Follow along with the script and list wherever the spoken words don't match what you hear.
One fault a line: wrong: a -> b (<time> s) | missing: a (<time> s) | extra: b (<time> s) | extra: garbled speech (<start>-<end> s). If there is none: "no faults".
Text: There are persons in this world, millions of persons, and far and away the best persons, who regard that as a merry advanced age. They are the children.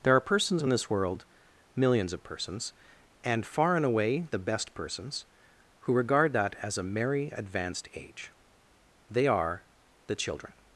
no faults